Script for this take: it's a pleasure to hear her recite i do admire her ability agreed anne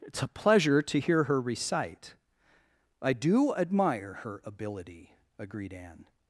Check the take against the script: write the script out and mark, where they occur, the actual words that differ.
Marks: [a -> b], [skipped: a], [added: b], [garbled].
it's a pleasure to hear her recite i do admire her ability agreed anne